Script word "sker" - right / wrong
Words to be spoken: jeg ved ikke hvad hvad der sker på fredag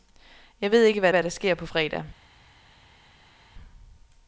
right